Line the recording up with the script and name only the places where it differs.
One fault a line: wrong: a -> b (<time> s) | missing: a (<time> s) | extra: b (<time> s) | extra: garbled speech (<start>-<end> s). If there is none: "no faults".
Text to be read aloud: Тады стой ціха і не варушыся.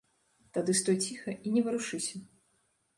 no faults